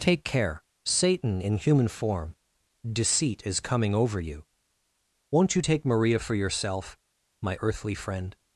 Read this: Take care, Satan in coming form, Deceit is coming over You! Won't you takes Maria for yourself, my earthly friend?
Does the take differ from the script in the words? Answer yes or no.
yes